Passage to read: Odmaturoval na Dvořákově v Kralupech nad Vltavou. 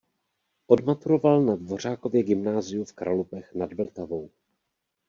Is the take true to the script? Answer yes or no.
no